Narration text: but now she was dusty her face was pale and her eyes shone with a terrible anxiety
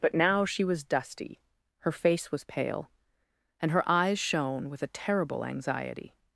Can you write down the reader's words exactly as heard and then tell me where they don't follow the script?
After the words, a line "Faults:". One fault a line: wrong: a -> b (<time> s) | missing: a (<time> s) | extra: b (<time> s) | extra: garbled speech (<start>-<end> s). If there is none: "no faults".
but now she was dusty her face was pale and her eyes shone with a terrible anxiety
Faults:
no faults